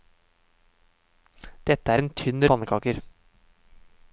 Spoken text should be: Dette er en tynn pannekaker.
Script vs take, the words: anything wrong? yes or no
no